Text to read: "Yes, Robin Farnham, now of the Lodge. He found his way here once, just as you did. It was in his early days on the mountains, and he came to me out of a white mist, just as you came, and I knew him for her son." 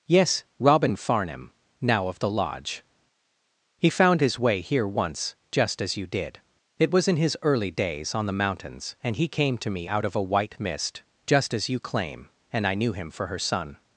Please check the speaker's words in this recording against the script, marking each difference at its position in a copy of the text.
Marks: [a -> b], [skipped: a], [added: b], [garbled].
"Yes, Robin Farnham, now of the Lodge. He found his way here once, just as you did. It was in his early days on the mountains, and he came to me out of a white mist, just as you [came, -> claim] and I knew him for her son."